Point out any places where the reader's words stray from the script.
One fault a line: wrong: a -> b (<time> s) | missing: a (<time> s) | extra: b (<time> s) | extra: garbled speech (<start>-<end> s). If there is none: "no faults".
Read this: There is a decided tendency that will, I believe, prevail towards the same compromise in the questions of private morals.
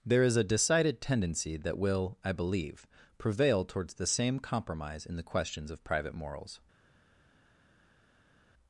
no faults